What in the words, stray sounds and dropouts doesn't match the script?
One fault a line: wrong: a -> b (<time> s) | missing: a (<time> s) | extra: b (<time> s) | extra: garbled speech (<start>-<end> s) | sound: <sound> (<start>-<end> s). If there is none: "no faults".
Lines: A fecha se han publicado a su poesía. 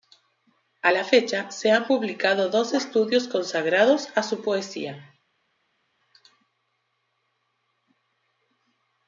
extra: la (0.9 s)
extra: dos estudios consagrados (2.5 s)